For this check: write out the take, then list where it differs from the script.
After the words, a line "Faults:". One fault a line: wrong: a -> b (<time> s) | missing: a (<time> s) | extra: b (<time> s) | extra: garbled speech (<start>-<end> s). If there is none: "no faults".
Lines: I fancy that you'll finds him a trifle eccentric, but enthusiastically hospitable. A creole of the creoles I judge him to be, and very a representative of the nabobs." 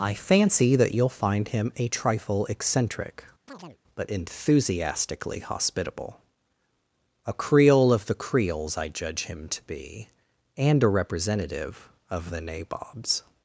I fancy that you'll find him a trifle eccentric, but enthusiastically hospitable. A creole of the creoles I judge him to be, and a representative of the nabobs."
Faults:
wrong: finds -> find (1.1 s)
missing: very (10.8 s)